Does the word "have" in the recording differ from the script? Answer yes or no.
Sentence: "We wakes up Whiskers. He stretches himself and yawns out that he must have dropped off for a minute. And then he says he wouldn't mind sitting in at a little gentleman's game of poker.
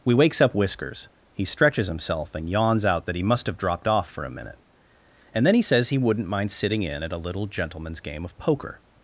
no